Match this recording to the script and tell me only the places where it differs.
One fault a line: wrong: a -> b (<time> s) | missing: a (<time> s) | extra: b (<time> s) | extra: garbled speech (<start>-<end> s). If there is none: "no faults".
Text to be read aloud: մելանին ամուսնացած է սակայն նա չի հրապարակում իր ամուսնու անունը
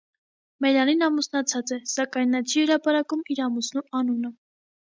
no faults